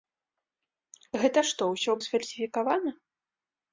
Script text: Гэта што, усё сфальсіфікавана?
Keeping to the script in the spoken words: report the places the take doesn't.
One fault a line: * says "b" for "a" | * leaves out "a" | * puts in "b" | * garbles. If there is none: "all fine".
all fine